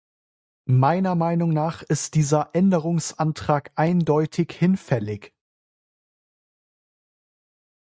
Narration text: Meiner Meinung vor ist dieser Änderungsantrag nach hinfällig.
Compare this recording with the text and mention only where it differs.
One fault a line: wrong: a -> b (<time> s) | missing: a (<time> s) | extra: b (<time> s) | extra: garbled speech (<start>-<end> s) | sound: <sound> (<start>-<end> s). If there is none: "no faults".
wrong: vor -> nach (1.5 s)
wrong: nach -> eindeutig (3.8 s)